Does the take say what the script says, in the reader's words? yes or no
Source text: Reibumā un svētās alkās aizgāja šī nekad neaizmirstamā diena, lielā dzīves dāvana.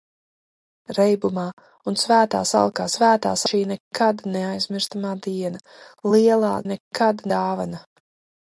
no